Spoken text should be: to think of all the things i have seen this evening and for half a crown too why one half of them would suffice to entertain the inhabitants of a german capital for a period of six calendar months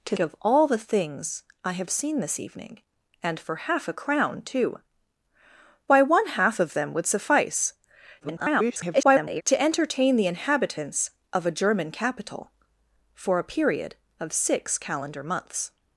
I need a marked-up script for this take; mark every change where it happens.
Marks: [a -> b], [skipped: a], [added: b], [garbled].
to [skipped: think] of all the things i have seen this evening and for half a crown too why one half of them would suffice [garbled] to entertain the inhabitants of a german capital for a period of six calendar months